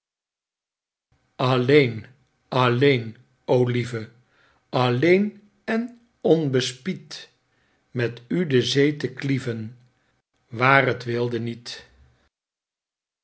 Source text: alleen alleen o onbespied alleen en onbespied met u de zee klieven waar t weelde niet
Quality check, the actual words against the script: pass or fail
fail